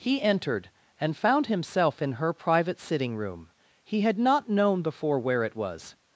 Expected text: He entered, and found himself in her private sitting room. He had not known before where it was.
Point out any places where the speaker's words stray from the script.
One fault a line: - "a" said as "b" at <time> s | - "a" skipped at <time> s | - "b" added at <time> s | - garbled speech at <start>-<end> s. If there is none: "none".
none